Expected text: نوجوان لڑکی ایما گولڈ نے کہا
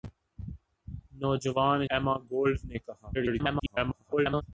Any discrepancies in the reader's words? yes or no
yes